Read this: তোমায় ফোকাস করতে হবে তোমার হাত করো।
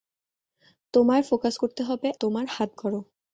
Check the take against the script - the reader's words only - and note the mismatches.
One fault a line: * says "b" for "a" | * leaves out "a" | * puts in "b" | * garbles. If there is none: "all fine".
all fine